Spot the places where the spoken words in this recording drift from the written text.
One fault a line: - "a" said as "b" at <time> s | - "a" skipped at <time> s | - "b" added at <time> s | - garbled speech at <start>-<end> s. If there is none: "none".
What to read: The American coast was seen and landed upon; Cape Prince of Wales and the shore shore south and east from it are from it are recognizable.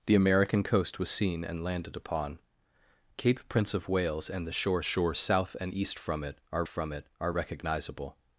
none